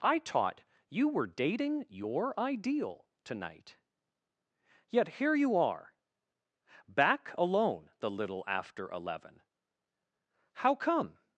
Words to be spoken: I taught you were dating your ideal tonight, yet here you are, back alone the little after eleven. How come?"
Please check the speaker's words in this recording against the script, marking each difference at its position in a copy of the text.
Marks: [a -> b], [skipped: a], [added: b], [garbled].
I taught you were dating your ideal tonight, yet here you are, back alone the little after eleven. How come?"